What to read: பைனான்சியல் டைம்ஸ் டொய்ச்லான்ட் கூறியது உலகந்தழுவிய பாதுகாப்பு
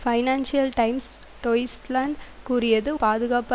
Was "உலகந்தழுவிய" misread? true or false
true